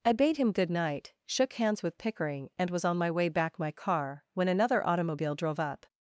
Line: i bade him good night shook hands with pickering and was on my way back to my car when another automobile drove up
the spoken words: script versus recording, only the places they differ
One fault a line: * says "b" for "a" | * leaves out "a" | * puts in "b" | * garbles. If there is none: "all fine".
* leaves out "to"